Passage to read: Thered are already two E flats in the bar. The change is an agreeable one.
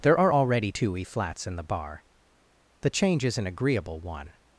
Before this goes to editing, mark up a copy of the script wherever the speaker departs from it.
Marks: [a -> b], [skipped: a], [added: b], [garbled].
[Thered -> There] are already two E flats in the bar. The change is an agreeable one.